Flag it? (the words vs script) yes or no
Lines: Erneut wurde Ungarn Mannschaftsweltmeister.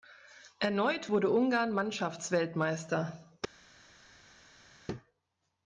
no